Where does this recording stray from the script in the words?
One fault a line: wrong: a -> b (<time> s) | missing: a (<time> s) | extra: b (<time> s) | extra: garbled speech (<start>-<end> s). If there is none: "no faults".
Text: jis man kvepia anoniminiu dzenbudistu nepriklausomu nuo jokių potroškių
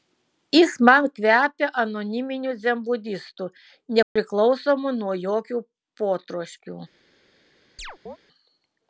no faults